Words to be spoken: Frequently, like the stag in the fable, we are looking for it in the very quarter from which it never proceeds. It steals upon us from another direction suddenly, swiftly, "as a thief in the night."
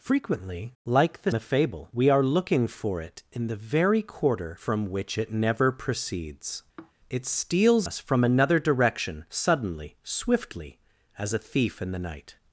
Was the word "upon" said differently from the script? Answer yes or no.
yes